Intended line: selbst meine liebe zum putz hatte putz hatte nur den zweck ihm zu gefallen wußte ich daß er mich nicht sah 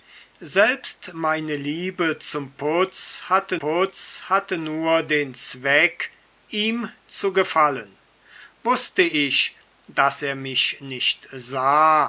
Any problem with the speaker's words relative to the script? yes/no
no